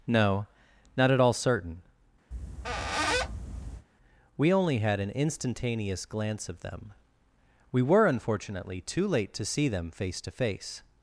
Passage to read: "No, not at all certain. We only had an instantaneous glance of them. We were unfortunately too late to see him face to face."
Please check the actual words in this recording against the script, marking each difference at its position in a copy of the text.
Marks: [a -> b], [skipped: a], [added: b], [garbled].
"No, not at all certain. We only had an instantaneous glance of them. We were unfortunately too late to see [him -> them] face to face."